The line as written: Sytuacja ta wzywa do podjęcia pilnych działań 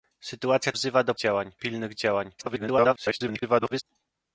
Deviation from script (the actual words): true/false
true